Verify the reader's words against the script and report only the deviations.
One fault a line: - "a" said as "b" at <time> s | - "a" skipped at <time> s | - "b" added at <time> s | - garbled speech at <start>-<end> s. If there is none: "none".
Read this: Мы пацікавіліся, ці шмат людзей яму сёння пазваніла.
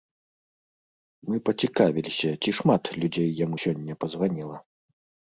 none